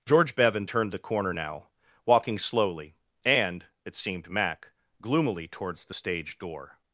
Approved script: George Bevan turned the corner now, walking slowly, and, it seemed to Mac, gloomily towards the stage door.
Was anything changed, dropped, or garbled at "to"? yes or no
yes